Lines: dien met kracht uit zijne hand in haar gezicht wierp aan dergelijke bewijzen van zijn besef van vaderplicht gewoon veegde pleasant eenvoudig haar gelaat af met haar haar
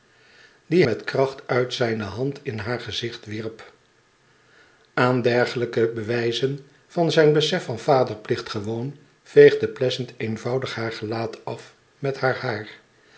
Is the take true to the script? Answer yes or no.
yes